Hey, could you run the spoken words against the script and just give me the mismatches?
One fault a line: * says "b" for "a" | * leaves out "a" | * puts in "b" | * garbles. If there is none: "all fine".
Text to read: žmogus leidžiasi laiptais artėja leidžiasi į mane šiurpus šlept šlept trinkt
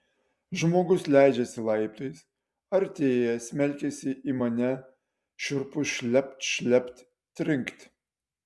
* says "smelkiasi" for "leidžiasi"